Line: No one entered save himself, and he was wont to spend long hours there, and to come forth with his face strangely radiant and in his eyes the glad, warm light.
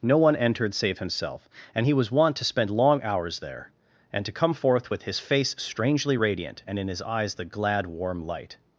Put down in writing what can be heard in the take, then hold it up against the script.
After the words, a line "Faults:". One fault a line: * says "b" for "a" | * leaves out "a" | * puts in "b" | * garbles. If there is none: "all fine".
No one entered save himself, and he was wont to spend long hours there, and to come forth with his face strangely radiant and in his eyes the glad, warm light.
Faults:
all fine